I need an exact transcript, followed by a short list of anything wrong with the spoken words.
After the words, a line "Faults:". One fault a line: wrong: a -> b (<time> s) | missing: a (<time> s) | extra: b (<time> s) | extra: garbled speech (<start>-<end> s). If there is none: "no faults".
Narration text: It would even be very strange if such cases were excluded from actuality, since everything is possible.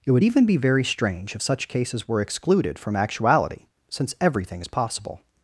It would even be very strange if such cases were excluded from actuality, since everything is possible.
Faults:
no faults